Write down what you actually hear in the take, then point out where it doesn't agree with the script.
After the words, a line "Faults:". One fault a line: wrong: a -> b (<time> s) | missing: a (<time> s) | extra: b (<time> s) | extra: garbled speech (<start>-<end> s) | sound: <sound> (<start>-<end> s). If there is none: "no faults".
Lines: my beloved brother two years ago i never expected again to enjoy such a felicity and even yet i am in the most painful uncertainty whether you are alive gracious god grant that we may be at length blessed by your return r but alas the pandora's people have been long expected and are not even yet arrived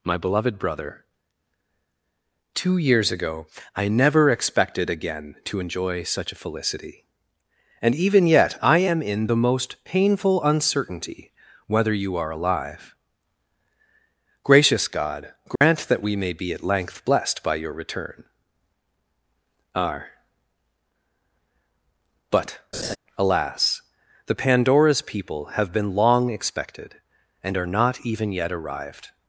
my beloved brother two years ago i never expected again to enjoy such a felicity and even yet i am in the most painful uncertainty whether you are alive gracious god grant that we may be at length blessed by your return r but alas the pandora's people have been long expected and are not even yet arrived
Faults:
sound: dropout (15.6-15.6 s)
sound: laugh (22.7-23.0 s)